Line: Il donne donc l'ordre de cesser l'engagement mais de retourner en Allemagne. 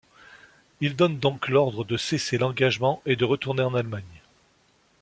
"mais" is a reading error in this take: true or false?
true